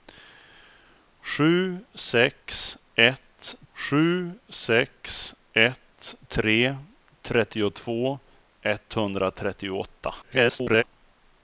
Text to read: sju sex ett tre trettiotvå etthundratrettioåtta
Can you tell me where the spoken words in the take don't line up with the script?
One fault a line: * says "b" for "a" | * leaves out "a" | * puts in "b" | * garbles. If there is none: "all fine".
* puts in "sju sex ett"
* garbles